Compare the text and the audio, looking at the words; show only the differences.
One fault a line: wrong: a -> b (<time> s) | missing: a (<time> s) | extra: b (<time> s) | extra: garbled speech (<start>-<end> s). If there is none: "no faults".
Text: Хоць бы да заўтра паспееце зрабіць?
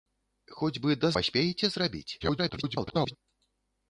missing: заўтра (1.1 s)
extra: garbled speech (2.2-3.2 s)